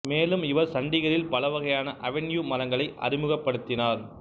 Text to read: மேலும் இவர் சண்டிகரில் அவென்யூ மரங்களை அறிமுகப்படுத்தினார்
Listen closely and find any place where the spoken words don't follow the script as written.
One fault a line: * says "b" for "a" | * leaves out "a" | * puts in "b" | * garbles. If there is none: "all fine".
* puts in "பல வகையான"